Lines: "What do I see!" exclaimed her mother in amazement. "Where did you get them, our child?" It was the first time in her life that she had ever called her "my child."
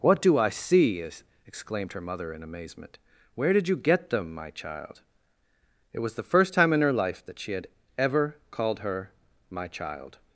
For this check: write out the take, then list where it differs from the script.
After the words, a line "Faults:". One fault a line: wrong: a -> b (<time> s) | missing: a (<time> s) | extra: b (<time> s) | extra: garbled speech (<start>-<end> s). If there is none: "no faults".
"What do I see!" exclaimed her mother in amazement. "Where did you get them, my child?" It was the first time in her life that she had ever called her "my child."
Faults:
wrong: our -> my (4.3 s)